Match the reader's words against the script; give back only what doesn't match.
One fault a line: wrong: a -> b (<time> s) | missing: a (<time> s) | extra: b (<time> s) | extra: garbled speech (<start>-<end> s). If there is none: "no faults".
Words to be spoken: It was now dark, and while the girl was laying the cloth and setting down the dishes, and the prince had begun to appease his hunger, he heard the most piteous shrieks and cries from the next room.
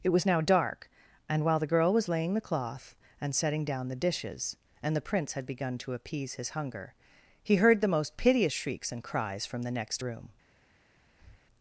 no faults